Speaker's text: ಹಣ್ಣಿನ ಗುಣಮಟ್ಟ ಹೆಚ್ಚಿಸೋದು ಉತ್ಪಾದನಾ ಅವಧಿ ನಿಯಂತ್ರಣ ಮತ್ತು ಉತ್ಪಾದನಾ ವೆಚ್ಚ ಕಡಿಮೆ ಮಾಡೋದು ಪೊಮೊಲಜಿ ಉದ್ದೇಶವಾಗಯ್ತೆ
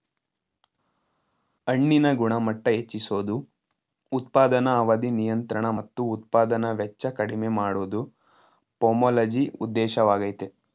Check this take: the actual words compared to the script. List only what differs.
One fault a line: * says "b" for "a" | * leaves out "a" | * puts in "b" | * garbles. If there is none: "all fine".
all fine